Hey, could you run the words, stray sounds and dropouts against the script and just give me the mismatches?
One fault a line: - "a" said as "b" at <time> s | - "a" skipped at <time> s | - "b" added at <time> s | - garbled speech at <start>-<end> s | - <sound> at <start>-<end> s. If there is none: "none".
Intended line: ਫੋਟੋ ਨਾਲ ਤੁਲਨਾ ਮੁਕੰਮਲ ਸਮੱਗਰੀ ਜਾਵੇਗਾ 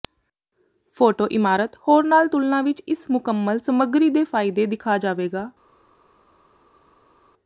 - "ਇਮਾਰਤ ਹੋਰ" added at 1.3 s
- "ਵਿਚ ਇਸ" added at 2.6 s
- "ਦੇ ਫਾਇਦੇ ਦਿਖਾ" added at 4.1 s